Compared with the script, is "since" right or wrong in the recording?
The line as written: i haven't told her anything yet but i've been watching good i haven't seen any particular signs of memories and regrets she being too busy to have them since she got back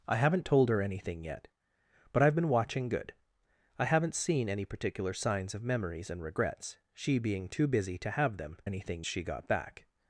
wrong